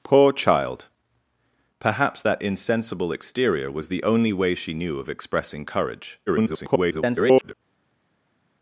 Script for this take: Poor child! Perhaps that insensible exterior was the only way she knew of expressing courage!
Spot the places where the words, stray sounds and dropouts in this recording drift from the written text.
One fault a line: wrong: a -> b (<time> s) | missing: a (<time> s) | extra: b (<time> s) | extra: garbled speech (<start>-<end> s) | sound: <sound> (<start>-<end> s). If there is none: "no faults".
extra: garbled speech (6.3-7.5 s)